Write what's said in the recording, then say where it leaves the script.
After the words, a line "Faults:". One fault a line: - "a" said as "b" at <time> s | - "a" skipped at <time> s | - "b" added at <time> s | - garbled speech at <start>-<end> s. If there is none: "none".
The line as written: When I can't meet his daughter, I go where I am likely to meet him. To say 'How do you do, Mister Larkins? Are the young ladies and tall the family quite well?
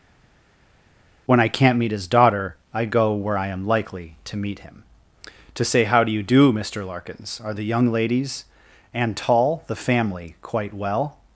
When I can't meet his daughter, I go where I am likely to meet him. To say 'How do you do, Mister Larkins? Are the young ladies and tall the family quite well?
Faults:
none